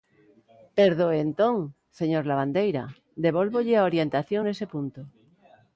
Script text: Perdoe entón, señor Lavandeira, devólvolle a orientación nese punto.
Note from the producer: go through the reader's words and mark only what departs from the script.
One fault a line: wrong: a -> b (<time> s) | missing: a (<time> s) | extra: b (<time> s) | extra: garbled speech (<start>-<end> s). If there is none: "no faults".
no faults